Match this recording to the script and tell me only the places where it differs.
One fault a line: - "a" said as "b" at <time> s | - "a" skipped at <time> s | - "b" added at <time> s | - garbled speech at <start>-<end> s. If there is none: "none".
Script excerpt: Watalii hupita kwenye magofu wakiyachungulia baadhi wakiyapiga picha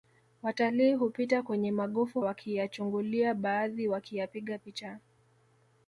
none